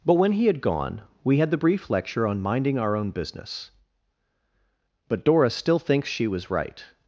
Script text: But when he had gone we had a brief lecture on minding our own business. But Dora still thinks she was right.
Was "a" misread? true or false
true